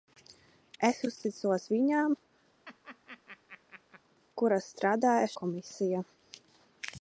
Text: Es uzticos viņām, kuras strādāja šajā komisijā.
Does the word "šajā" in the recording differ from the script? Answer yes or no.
yes